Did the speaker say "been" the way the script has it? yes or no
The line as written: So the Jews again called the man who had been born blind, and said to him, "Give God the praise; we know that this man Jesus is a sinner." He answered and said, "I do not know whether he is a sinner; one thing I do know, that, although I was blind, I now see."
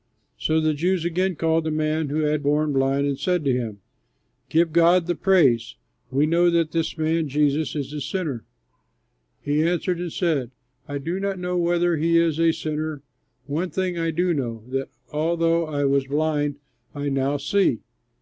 no